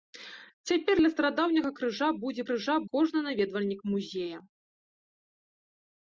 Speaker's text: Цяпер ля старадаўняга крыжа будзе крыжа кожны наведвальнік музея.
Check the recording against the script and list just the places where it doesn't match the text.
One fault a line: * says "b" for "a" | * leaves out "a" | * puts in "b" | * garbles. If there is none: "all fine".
all fine